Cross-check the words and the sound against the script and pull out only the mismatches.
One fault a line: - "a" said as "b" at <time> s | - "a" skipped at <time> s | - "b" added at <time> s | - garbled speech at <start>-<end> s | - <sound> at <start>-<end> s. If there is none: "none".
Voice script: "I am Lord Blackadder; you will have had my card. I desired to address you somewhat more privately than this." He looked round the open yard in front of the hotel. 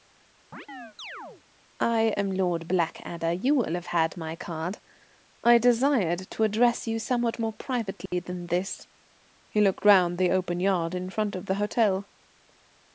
- chirp at 0.5-1.4 s
- dropout at 8.1-8.1 s